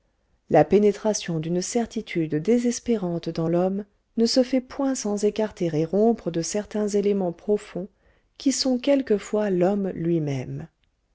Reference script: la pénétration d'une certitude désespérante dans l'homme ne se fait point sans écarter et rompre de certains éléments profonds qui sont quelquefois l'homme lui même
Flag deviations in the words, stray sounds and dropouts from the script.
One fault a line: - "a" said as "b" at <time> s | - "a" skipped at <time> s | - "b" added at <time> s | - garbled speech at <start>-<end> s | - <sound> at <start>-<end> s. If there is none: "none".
none